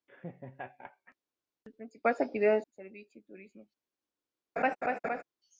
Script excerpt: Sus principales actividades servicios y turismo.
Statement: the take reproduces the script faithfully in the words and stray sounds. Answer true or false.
false